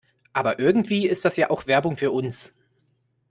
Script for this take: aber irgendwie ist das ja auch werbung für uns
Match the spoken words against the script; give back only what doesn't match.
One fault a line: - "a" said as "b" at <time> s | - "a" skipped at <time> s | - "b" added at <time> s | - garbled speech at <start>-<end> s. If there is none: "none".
none